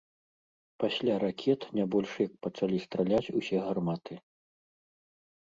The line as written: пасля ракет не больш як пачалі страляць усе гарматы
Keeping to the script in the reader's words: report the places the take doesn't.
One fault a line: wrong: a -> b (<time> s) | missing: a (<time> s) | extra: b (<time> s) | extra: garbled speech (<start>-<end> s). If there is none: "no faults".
no faults